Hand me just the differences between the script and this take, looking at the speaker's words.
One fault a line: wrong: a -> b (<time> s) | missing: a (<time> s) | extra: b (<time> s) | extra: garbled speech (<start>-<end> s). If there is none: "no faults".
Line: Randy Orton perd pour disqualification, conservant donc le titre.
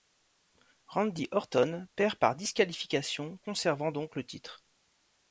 wrong: pour -> par (2.2 s)